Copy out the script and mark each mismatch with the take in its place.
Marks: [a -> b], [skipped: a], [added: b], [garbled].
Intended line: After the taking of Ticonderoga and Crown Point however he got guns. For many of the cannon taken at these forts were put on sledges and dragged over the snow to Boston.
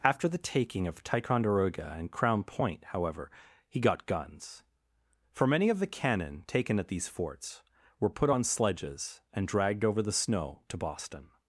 After the taking of Ticonderoga and Crown Point however he got guns. For many of the cannon taken at these forts were put on sledges and dragged over the snow to Boston.